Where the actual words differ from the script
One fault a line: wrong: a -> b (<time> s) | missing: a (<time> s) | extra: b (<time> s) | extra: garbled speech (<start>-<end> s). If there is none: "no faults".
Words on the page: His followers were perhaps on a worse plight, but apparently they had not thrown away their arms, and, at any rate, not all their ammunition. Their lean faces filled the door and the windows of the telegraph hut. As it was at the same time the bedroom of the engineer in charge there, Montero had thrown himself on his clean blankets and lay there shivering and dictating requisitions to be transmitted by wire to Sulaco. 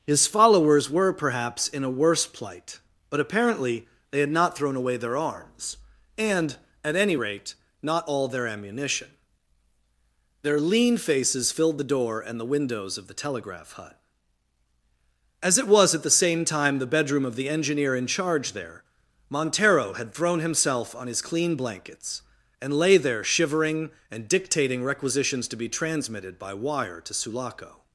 wrong: on -> in (1.7 s)